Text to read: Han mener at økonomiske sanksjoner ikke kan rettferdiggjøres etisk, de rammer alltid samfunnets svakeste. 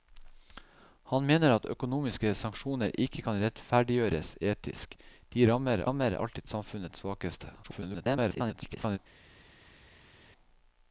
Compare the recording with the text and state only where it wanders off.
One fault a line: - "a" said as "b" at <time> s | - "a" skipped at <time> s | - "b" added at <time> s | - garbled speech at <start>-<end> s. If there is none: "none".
- "rammer" added at 5.9 s
- garbled speech at 7.6-9.0 s